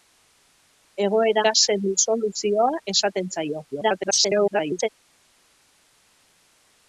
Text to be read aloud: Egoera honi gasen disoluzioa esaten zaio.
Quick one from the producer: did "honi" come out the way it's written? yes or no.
no